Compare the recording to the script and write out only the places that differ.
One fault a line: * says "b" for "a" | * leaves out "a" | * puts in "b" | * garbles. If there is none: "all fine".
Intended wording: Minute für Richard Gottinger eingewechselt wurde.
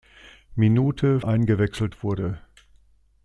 * leaves out "für Richard Gottinger"